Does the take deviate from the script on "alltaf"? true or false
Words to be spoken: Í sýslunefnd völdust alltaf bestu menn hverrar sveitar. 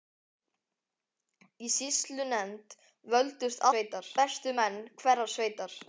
true